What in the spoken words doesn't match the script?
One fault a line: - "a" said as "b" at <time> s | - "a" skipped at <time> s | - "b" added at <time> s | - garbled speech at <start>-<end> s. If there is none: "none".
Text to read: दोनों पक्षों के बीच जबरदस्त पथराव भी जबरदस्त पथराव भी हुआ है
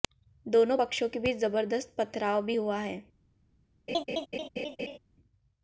- "जबरदस्त पथराव भी" skipped at 2.6 s